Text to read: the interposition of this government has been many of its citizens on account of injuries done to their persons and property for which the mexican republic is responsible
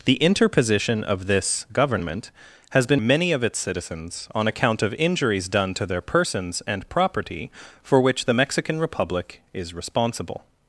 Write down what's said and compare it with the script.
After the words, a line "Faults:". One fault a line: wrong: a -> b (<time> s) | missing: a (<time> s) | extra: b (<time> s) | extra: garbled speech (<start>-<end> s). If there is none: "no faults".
the interposition of this government has been many of its citizens on account of injuries done to their persons and property for which the mexican republic is responsible
Faults:
no faults